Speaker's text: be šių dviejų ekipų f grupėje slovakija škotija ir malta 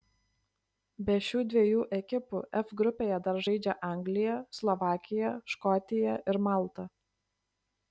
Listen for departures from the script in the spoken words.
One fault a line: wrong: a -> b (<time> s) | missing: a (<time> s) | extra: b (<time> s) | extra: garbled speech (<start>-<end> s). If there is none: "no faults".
extra: dar žaidžia anglija (3.3 s)